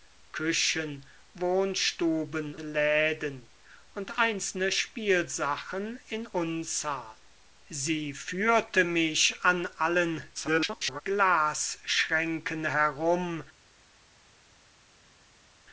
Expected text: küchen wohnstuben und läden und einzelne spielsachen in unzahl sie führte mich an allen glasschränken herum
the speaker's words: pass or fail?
fail